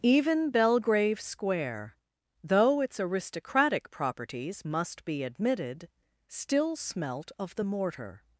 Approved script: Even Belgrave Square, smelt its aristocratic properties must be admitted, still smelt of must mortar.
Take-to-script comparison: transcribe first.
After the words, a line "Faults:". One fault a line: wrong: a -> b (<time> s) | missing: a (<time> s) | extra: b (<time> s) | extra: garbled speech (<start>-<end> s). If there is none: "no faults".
Even Belgrave Square, though its aristocratic properties must be admitted, still smelt of the mortar.
Faults:
wrong: smelt -> though (2.4 s)
wrong: must -> the (7.5 s)